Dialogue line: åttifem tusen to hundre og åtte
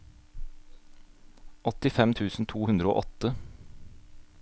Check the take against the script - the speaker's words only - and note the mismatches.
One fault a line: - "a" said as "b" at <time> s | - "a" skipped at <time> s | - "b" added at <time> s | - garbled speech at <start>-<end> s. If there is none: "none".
none